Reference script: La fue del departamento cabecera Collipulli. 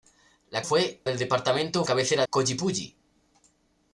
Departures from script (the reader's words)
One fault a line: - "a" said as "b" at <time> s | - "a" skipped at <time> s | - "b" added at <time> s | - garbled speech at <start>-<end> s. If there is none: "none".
none